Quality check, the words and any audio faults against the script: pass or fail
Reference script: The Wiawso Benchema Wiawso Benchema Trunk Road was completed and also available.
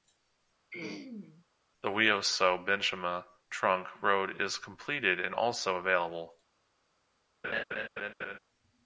fail